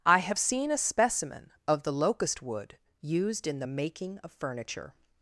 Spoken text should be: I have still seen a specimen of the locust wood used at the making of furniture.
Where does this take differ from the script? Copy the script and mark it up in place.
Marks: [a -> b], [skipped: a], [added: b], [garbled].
I have [skipped: still] seen a specimen of the locust wood used [at -> in] the making of furniture.